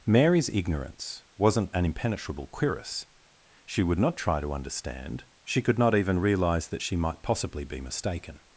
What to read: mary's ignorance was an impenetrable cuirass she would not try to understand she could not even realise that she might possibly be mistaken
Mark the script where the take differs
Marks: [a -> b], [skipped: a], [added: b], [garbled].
mary's ignorance [was -> wasn't] an impenetrable cuirass she would not try to understand she could not even realise that she might possibly be mistaken